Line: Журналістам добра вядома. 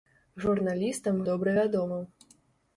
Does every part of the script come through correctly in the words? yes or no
yes